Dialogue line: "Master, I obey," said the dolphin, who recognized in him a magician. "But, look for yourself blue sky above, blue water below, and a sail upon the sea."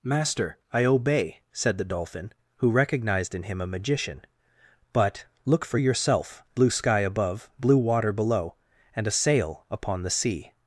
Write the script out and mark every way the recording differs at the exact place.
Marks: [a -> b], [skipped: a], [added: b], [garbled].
"Master, I obey," said the dolphin, who recognized in him a magician. "But, look for yourself blue sky above, blue water below, and a sail upon the sea."